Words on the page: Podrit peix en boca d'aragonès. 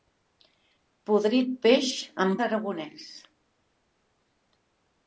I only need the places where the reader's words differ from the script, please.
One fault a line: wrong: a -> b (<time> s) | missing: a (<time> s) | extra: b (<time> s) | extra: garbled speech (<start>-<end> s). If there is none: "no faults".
missing: boca (2.3 s)